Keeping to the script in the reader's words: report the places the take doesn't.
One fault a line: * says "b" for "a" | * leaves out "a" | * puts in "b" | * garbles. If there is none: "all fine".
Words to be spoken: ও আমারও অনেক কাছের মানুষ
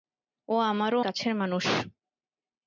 * leaves out "অনেক"